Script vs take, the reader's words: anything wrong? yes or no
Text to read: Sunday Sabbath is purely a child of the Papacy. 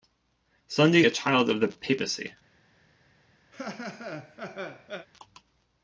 yes